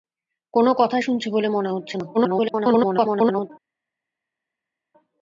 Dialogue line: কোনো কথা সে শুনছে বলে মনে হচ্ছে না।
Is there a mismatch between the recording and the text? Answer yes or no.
yes